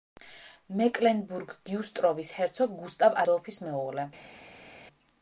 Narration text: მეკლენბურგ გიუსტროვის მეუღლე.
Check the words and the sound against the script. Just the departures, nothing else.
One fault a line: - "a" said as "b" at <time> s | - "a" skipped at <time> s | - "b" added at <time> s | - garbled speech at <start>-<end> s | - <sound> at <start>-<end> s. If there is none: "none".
- "ჰერცოგ გუსტავ ადოლფის" added at 2.4 s